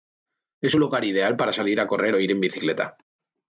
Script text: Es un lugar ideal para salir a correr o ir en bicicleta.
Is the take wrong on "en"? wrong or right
right